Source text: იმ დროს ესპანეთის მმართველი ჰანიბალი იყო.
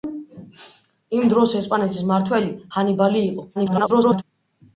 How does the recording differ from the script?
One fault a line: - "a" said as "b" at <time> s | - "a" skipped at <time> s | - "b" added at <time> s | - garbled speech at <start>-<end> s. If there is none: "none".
- garbled speech at 3.6-4.2 s